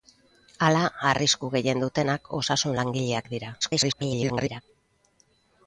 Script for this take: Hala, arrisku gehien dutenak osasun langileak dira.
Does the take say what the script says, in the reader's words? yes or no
no